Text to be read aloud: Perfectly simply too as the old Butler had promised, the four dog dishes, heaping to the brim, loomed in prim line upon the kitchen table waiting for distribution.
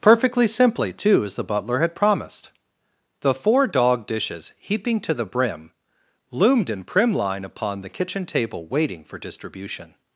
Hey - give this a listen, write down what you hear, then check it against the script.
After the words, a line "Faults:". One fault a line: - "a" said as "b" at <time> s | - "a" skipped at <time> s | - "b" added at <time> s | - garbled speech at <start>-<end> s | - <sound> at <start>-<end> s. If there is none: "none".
Perfectly simply too as the Butler had promised, the four dog dishes, heaping to the brim, loomed in prim line upon the kitchen table waiting for distribution.
Faults:
- "old" skipped at 1.4 s